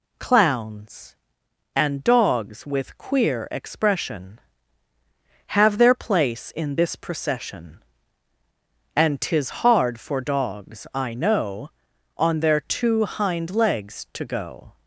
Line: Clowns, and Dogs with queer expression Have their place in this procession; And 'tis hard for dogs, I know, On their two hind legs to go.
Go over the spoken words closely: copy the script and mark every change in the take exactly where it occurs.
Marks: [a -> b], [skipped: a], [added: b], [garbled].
Clowns, and Dogs with queer expression Have their place in this procession; And 'tis hard for dogs, I know, On their two hind legs to go.